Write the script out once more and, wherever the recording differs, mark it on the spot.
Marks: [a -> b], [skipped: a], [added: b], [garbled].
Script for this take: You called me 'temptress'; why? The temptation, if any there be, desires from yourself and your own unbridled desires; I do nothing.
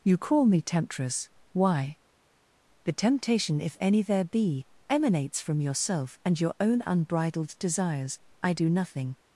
You [called -> call] me 'temptress'; why? The temptation, if any there be, [desires -> emanates] from yourself and your own unbridled desires; I do nothing.